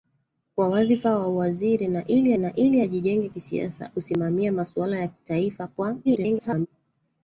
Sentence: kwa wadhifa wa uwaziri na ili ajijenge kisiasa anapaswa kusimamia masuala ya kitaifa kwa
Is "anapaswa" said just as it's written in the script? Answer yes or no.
no